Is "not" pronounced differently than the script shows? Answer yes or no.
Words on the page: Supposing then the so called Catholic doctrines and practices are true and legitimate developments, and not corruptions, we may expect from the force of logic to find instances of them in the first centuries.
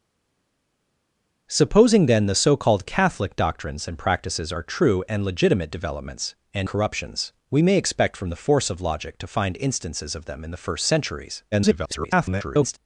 yes